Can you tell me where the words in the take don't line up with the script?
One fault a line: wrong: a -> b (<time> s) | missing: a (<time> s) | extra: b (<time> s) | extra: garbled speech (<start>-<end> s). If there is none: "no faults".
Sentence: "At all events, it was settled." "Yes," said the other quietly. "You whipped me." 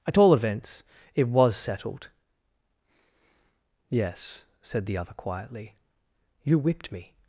no faults